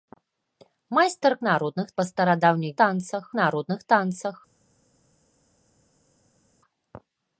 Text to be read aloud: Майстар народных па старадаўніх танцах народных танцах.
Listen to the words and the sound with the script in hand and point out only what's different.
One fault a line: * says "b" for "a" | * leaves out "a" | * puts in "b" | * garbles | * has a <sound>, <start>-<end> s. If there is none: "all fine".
all fine